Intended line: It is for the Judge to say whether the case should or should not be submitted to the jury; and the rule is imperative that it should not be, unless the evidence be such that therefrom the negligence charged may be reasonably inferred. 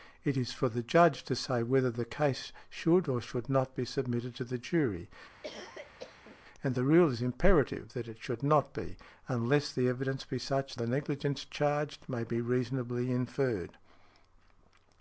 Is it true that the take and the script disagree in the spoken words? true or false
true